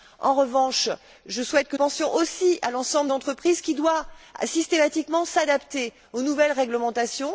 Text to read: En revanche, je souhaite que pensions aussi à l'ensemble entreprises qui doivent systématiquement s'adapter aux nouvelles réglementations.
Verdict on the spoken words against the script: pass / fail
pass